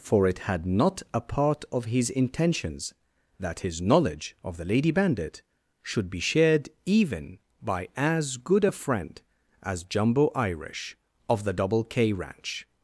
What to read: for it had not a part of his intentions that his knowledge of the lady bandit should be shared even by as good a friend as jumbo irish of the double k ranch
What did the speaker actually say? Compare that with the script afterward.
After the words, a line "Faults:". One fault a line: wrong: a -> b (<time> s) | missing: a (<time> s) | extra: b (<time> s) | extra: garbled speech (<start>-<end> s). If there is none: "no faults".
for it had not a part of his intentions that his knowledge of the lady bandit should be shared even by as good a friend as jumbo irish of the double k ranch
Faults:
no faults